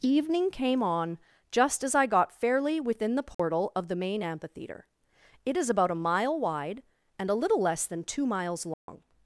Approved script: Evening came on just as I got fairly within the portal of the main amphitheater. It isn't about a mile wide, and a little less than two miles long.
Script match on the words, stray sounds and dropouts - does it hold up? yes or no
no